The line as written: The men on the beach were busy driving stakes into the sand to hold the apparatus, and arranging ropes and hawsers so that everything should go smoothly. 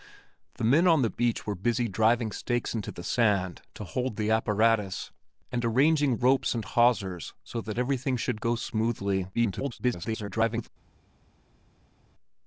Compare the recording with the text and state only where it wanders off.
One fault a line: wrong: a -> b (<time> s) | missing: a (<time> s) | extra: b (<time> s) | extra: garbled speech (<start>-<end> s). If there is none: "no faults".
extra: garbled speech (9.3-10.7 s)